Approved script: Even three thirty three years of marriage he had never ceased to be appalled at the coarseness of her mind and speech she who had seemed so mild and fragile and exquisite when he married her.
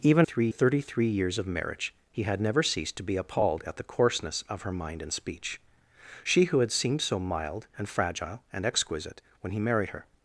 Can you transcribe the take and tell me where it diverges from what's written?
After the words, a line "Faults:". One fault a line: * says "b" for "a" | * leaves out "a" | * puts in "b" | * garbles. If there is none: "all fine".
Even three thirty three years of marriage he had never ceased to be appalled at the coarseness of her mind and speech she who had seemed so mild and fragile and exquisite when he married her.
Faults:
all fine